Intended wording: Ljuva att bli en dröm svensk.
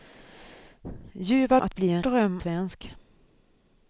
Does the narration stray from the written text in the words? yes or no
no